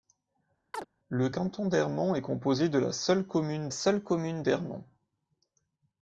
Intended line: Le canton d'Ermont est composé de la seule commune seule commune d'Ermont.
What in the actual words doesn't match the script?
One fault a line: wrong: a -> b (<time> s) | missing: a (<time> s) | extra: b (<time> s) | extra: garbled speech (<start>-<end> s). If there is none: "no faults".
no faults